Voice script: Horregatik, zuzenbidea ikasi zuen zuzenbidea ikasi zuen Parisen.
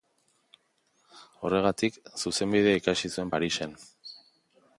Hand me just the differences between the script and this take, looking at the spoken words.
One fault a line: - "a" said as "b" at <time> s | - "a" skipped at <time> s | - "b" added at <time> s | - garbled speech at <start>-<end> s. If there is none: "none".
- "zuzenbidea ikasi zuen" skipped at 3.3 s